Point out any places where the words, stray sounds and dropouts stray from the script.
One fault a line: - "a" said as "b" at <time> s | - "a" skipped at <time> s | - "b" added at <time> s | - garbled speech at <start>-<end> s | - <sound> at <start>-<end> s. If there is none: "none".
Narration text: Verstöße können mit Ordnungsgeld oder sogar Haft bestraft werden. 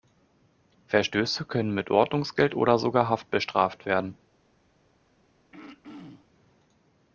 - throat clearing at 5.5-6.3 s